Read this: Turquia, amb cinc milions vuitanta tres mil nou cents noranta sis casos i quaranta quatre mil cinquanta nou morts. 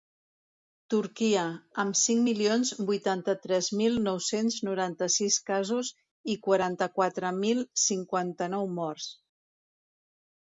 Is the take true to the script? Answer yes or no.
yes